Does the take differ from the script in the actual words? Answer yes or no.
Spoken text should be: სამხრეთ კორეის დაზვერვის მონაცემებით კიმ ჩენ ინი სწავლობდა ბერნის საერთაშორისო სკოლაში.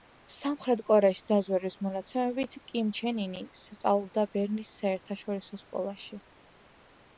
no